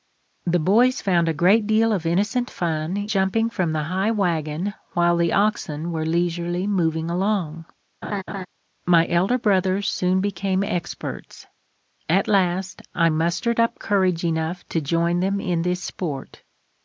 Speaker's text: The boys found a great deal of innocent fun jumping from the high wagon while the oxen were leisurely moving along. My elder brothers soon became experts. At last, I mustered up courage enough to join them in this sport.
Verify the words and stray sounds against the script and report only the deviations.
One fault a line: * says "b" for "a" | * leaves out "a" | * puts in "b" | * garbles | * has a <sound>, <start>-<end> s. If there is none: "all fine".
* has a laugh, 8.0-8.5 s